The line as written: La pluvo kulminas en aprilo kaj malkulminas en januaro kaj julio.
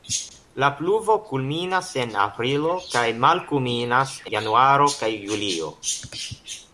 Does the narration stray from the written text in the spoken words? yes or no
yes